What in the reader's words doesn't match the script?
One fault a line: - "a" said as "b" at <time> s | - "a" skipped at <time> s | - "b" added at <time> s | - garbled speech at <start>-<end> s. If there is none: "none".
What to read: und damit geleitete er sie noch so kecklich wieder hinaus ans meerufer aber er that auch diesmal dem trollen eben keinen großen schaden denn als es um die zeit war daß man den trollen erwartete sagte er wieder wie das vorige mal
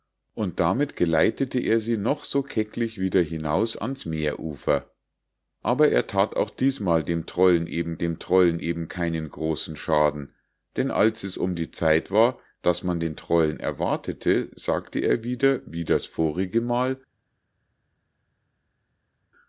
- "dem trollen eben" added at 8.0 s